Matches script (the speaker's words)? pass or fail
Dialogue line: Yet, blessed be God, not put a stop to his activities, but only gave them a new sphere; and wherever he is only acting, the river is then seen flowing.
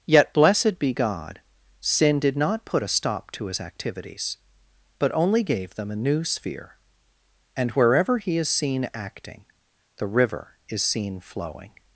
fail